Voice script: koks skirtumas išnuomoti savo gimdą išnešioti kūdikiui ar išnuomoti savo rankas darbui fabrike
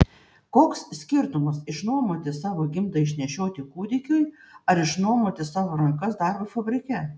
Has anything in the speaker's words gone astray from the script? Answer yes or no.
no